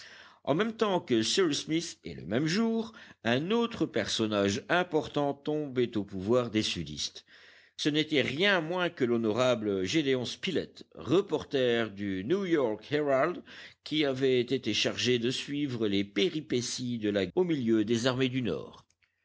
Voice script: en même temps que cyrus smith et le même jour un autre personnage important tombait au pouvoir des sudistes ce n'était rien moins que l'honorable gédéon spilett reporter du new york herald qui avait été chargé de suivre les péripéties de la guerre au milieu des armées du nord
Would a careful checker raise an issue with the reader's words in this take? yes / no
yes